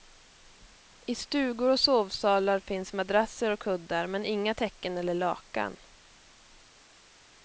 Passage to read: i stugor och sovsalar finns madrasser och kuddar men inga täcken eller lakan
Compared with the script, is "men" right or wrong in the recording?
right